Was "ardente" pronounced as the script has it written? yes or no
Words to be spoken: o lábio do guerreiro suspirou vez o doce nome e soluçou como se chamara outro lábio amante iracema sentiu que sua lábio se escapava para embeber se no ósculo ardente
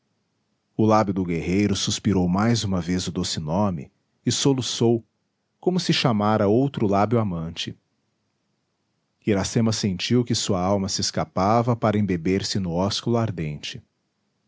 yes